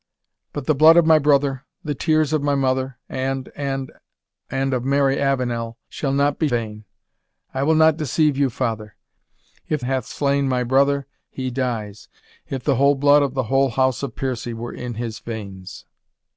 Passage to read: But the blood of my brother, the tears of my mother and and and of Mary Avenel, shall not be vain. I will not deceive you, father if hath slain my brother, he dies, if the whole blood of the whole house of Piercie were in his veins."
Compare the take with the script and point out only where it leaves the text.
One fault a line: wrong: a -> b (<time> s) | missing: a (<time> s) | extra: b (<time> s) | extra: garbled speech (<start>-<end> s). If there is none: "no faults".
no faults